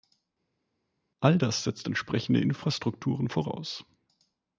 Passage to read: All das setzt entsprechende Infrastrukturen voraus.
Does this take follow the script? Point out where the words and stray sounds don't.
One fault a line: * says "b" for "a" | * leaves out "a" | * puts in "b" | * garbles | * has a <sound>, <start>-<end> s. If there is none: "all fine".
all fine